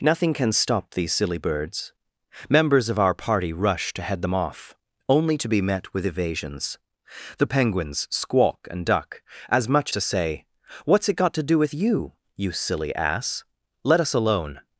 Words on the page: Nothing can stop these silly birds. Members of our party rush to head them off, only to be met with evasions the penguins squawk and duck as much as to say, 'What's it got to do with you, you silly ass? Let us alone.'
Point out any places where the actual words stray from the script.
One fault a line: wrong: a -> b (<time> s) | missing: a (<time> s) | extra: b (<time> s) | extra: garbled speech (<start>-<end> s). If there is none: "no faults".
missing: as (9.9 s)